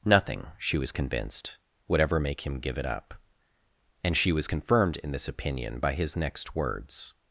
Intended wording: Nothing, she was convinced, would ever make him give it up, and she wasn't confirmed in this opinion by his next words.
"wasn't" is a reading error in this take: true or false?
true